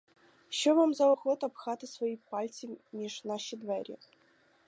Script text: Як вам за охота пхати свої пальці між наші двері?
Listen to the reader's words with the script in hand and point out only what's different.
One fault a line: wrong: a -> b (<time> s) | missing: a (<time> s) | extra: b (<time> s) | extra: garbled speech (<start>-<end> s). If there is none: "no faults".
wrong: Як -> Що (0.5 s)